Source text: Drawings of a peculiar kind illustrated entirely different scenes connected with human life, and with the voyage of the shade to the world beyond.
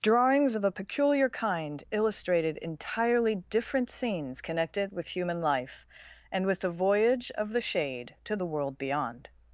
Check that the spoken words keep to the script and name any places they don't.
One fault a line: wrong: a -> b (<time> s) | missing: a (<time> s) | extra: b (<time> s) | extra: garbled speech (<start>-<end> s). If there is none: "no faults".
no faults